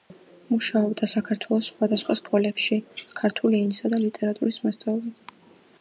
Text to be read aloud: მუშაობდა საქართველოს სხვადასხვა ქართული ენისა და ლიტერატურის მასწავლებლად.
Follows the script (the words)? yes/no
no